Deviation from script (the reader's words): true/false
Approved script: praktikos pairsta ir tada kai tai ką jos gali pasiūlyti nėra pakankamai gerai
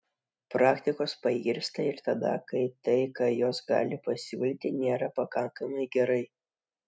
false